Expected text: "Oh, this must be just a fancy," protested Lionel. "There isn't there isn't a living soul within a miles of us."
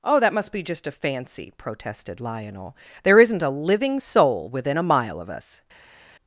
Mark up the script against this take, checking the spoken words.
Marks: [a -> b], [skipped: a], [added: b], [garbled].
"Oh, [this -> that] must be just a fancy," protested Lionel. "There isn't [skipped: there isn't] a living soul within a [miles -> mile] of us."